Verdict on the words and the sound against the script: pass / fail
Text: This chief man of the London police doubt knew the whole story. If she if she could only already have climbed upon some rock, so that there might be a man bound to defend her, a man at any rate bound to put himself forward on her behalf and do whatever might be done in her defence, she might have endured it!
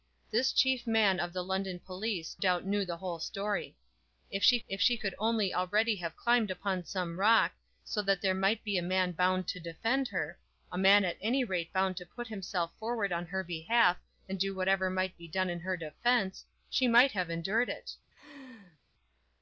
fail